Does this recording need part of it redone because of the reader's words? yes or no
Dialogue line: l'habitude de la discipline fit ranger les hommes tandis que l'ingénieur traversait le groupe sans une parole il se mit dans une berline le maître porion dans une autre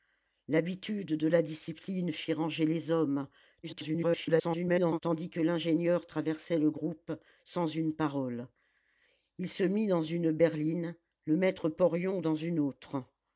yes